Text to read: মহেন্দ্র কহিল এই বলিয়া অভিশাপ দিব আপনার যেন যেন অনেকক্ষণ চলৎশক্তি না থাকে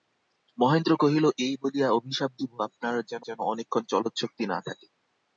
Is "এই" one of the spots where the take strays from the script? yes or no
no